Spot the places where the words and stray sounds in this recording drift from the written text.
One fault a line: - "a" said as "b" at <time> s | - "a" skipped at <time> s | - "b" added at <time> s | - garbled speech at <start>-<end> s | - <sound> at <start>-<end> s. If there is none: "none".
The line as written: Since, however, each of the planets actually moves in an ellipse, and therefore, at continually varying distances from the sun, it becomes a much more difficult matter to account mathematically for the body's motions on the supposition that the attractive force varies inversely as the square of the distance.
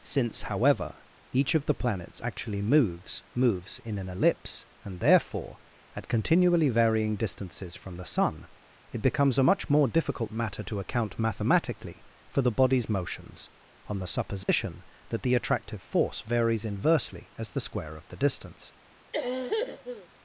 - "moves" added at 3.3 s
- dropout at 14.4-14.5 s
- cough at 19.1-20.1 s